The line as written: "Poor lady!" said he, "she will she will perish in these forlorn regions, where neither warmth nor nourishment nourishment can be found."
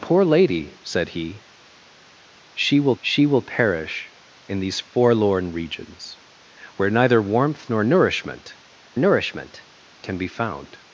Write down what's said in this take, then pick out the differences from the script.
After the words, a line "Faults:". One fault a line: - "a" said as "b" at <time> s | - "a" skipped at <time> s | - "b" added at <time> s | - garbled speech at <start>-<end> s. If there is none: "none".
"Poor lady!" said he, "she will she will perish in these forlorn regions, where neither warmth nor nourishment nourishment can be found."
Faults:
none